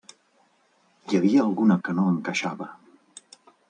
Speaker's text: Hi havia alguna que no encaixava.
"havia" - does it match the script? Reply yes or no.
yes